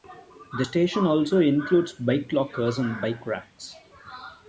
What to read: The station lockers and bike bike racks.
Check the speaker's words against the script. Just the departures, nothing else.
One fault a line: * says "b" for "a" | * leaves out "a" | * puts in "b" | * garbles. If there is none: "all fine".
* puts in "also includes bike"
* leaves out "bike"